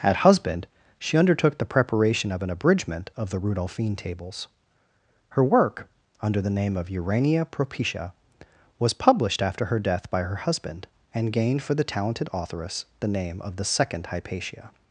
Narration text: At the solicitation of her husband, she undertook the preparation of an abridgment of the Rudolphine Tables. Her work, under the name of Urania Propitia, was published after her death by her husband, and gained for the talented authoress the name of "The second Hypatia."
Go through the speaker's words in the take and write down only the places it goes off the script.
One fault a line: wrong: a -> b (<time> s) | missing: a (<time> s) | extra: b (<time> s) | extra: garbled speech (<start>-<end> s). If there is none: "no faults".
missing: the solicitation of her (0.2 s)